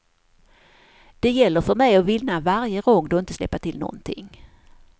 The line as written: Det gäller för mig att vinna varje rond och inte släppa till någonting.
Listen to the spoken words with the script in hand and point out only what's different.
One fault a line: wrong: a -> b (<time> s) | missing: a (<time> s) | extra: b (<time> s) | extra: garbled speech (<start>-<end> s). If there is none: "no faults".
no faults